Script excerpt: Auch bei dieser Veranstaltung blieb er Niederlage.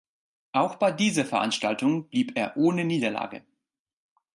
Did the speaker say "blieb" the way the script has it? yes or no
yes